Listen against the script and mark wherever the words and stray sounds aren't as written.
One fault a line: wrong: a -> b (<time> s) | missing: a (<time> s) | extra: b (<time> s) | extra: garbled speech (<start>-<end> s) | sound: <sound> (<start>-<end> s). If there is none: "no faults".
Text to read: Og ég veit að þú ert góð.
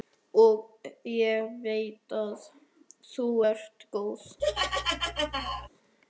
sound: laugh (4.4-5.7 s)